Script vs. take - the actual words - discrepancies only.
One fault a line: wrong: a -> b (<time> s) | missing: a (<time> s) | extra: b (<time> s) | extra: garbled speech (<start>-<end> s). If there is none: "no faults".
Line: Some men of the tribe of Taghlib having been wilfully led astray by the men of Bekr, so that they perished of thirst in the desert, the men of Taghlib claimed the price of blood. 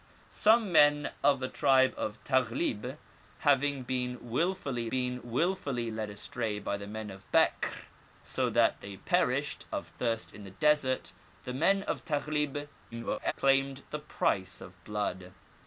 extra: been wilfully (4.9 s)
extra: garbled speech (12.9-13.3 s)